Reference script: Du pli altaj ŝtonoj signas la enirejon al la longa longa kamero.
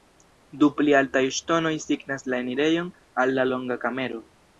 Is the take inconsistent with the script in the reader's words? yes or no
yes